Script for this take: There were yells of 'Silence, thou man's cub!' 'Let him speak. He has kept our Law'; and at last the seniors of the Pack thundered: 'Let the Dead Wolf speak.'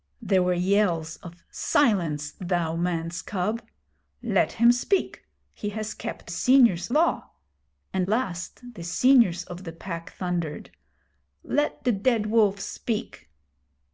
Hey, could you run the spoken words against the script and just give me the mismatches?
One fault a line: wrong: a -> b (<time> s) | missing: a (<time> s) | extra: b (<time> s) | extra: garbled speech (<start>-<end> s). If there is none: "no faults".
wrong: our -> seniors (6.3 s)
missing: at (8.1 s)